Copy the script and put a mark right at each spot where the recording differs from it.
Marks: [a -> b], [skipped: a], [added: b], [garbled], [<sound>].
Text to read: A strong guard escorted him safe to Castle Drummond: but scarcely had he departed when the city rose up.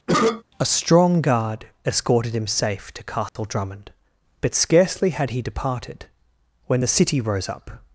[cough] A strong guard escorted him safe to Castle [dropout] Drummond: but scarcely had he departed when the city rose up.